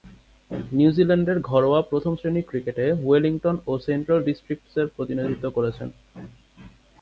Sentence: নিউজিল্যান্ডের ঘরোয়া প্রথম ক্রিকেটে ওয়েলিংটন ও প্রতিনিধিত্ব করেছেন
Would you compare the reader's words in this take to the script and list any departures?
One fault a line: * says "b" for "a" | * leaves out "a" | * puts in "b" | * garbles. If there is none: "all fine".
* puts in "শ্রেণীর"
* puts in "সেন্ট্রাল ডিস্ট্রিক্টসের"